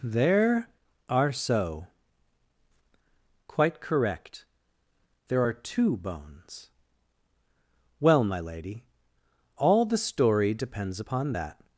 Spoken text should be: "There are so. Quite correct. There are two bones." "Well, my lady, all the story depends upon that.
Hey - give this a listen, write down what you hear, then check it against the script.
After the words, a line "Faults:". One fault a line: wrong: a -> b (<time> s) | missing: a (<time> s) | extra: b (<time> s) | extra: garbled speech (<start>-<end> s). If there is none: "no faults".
"There are so. Quite correct. There are two bones." "Well, my lady, all the story depends upon that.
Faults:
no faults